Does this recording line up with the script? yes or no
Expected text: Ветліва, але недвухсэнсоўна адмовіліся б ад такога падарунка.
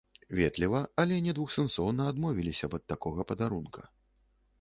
yes